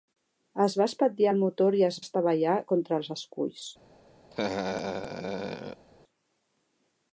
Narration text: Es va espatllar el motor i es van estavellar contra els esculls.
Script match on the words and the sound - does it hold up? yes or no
no